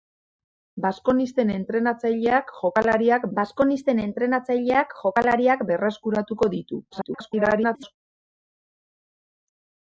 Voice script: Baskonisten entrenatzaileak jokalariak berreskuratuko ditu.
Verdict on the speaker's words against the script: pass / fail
fail